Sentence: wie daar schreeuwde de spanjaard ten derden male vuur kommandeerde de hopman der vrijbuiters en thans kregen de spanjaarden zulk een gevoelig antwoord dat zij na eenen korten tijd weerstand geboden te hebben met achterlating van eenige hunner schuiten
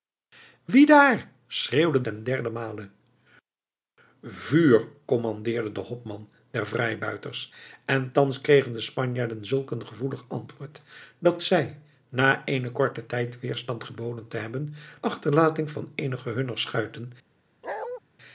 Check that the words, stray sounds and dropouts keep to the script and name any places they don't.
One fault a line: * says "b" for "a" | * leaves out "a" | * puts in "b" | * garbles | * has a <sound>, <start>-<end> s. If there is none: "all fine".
* leaves out "de spanjaard"
* leaves out "met"
* has a bark, 17.6-18.0 s